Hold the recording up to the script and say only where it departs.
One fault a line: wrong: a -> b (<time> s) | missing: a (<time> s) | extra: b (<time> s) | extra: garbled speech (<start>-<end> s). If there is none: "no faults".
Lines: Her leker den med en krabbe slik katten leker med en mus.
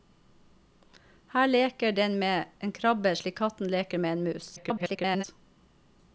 extra: garbled speech (4.6-5.2 s)